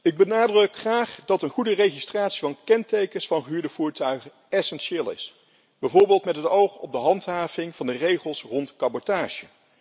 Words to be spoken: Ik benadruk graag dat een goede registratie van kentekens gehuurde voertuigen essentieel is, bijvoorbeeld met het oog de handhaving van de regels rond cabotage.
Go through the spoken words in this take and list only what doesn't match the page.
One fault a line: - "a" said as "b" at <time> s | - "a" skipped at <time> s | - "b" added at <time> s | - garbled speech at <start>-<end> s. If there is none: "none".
- "van" added at 3.3 s
- "op" added at 6.8 s